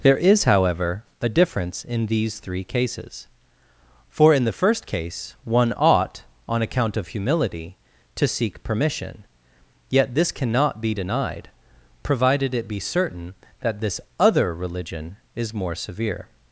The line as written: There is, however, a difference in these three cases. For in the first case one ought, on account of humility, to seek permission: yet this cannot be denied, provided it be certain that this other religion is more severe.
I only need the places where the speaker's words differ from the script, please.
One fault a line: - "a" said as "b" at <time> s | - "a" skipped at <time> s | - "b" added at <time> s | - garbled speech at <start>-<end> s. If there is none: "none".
none